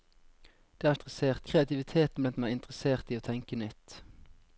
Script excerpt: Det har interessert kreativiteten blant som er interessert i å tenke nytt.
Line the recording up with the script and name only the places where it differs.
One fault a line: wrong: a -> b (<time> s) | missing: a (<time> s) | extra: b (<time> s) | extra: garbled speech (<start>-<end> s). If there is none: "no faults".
no faults